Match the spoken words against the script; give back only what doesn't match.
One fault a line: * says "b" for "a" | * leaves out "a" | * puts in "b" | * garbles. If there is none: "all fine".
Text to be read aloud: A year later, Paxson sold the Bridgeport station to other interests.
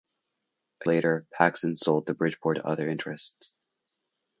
* leaves out "year"
* leaves out "station"